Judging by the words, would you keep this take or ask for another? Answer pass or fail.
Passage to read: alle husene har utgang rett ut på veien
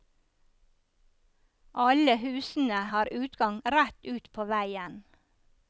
pass